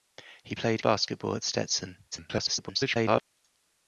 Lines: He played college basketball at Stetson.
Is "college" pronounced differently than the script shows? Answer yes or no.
yes